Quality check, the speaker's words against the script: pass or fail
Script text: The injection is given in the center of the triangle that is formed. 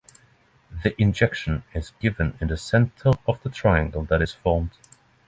pass